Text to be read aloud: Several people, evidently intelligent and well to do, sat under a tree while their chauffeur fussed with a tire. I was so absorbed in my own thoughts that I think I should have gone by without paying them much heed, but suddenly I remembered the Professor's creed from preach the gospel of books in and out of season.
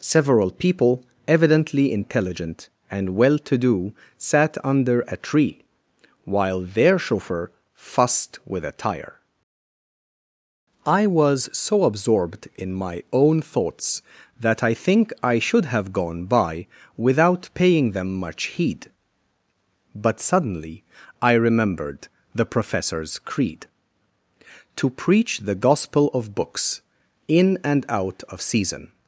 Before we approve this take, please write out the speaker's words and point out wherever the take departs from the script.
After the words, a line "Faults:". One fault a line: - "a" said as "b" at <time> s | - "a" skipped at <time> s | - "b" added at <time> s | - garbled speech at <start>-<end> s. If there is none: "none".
Several people, evidently intelligent and well to do, sat under a tree while their chauffeur fussed with a tire. I was so absorbed in my own thoughts that I think I should have gone by without paying them much heed, but suddenly I remembered the Professor's creed to preach the gospel of books in and out of season.
Faults:
- "from" said as "to" at 24.8 s